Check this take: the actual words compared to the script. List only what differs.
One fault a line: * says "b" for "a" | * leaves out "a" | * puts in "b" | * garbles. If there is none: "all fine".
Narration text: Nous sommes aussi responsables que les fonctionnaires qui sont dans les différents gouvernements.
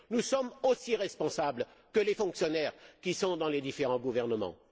all fine